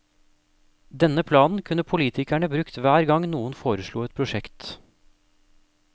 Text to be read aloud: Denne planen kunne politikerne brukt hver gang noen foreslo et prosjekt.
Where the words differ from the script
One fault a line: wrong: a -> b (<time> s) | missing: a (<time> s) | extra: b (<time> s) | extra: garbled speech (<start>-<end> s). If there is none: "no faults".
no faults